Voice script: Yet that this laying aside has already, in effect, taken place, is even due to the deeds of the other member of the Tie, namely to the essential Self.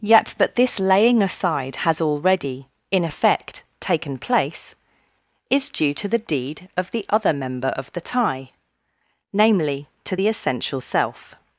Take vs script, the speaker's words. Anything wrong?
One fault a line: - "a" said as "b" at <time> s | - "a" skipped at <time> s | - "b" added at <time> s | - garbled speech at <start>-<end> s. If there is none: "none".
- "even" skipped at 5.7 s
- "deeds" said as "deed" at 6.2 s